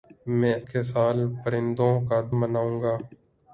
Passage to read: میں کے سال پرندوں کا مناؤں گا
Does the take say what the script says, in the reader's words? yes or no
yes